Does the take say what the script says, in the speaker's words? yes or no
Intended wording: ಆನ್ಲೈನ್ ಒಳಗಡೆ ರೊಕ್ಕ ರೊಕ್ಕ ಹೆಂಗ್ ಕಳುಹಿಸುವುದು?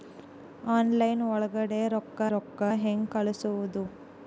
yes